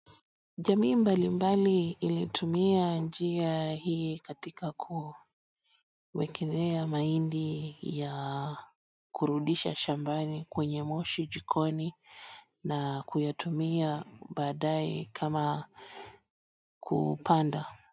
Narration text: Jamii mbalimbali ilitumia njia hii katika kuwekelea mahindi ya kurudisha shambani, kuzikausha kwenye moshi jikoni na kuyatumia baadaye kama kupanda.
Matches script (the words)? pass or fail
fail